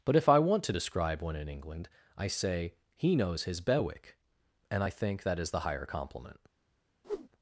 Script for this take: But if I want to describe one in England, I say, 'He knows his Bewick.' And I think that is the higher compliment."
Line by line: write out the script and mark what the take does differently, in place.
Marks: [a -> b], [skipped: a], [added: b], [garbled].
But if I want to describe one in England, I say, 'He knows his Bewick.' And I think that is the higher compliment."